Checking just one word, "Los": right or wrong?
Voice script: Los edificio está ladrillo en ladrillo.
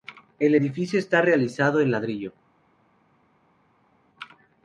wrong